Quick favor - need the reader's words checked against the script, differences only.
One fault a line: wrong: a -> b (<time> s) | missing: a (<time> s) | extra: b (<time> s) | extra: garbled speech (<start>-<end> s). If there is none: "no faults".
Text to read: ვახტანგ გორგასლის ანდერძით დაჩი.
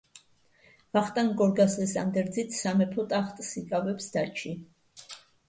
extra: სამეფო ტახტს იკავებს (2.6 s)